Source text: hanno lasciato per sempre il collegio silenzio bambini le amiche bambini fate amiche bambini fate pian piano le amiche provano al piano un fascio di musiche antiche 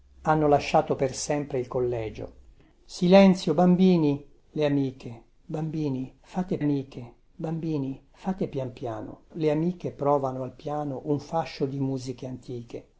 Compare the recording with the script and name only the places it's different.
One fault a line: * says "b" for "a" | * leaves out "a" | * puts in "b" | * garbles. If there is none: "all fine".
all fine